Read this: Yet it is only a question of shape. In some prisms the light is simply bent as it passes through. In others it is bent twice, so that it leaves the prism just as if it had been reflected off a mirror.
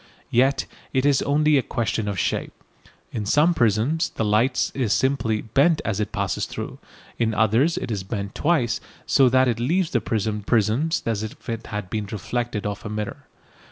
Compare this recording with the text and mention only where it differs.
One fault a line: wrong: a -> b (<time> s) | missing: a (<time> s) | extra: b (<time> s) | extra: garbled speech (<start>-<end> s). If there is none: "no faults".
wrong: just -> prisms (10.4 s)